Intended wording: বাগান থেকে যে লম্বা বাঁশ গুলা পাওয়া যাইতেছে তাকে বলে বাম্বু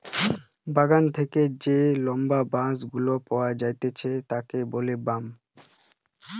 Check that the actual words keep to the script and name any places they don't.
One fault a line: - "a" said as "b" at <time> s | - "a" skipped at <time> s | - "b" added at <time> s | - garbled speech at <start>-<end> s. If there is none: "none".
none